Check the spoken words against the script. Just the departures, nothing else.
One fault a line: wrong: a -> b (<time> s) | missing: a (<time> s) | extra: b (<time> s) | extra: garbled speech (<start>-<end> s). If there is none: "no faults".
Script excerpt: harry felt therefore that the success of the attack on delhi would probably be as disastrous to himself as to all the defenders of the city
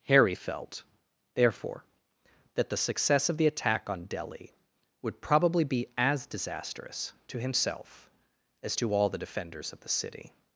no faults